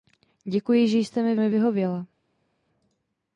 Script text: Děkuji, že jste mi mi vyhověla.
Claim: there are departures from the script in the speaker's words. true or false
false